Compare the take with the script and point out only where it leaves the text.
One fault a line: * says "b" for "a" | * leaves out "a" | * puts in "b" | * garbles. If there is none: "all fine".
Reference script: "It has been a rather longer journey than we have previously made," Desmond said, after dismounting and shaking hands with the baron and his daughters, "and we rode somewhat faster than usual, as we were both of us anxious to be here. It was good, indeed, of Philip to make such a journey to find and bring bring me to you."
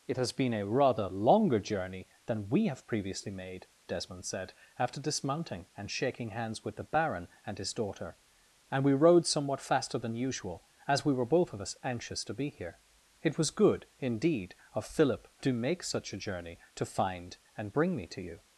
* says "daughter" for "daughters"
* leaves out "bring"